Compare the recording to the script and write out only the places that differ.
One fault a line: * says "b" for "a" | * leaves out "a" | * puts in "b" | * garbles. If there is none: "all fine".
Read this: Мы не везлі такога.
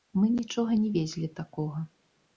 * puts in "нічога"